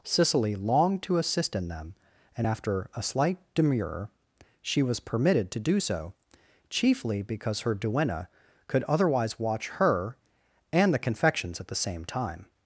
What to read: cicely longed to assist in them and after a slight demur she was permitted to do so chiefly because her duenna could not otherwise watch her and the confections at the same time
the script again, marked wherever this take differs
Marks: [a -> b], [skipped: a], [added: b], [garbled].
cicely longed to assist in them and after a slight demur she was permitted to do so chiefly because her duenna could [skipped: not] otherwise watch her and the confections at the same time